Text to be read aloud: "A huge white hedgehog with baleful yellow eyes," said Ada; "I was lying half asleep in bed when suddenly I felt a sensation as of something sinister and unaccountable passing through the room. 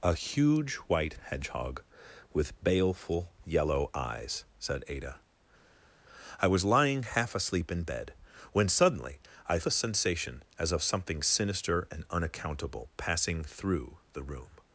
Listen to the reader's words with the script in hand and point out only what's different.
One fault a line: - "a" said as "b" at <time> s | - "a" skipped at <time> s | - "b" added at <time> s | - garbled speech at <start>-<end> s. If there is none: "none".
- "felt" skipped at 9.6 s